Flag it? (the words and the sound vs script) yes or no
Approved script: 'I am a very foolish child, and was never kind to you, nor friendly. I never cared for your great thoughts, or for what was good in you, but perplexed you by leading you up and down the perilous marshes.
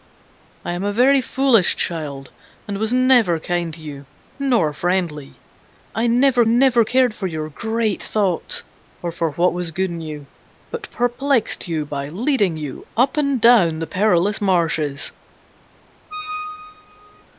yes